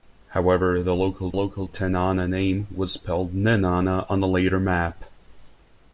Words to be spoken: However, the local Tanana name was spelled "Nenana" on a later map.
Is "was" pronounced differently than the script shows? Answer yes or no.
no